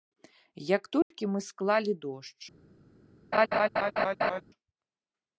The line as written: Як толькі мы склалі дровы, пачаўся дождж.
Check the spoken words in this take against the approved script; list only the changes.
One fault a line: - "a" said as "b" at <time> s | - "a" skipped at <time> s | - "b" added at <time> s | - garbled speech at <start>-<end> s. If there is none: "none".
- "дровы пачаўся" skipped at 1.9 s